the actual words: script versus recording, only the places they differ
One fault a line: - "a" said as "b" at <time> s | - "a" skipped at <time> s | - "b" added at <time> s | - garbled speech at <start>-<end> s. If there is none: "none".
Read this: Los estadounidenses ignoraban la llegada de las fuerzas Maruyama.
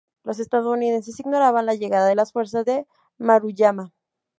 - "de" added at 2.6 s